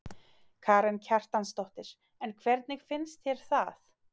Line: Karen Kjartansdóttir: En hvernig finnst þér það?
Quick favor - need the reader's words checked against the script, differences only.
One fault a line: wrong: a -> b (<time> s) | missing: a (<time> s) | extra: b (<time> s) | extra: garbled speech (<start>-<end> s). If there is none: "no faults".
no faults